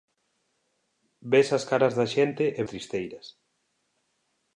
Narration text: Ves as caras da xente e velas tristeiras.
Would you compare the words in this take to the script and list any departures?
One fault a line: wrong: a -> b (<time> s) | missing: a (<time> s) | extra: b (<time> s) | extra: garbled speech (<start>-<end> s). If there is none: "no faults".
missing: velas (2.6 s)